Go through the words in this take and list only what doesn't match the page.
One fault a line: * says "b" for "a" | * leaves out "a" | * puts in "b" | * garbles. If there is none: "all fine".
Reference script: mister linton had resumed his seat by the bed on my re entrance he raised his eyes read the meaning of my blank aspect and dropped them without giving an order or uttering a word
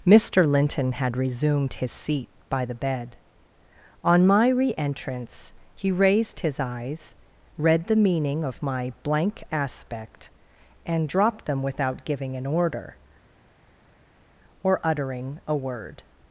all fine